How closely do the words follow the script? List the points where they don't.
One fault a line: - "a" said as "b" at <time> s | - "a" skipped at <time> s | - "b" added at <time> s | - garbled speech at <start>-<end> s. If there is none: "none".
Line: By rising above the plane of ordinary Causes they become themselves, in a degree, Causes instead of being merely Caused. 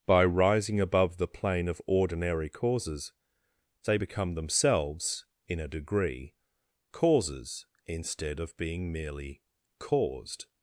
none